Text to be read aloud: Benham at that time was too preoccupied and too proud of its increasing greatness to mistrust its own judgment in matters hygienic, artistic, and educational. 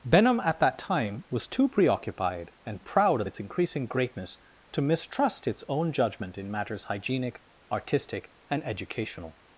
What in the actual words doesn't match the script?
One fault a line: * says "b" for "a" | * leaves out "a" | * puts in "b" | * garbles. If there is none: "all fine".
* leaves out "too"